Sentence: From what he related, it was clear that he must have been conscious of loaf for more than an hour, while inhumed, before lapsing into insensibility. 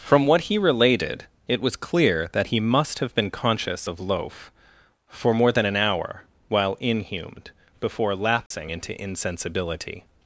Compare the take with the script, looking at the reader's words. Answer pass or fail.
pass